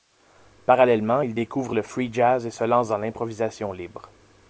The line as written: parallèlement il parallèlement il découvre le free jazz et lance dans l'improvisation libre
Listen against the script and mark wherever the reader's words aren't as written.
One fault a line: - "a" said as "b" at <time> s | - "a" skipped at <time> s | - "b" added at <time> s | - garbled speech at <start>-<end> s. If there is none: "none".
- "parallèlement il" skipped at 1.3 s
- "se" added at 2.5 s